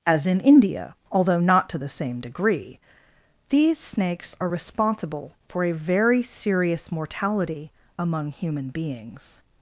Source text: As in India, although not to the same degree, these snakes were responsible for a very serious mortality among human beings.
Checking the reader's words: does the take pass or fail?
fail